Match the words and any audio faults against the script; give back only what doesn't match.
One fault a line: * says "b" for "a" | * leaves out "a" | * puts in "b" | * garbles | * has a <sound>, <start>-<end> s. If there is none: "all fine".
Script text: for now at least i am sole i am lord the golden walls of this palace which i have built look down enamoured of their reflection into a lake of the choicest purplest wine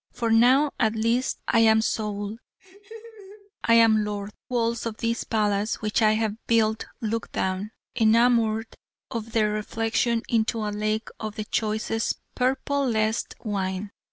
* has a laugh, 2.6-3.5 s
* leaves out "the golden"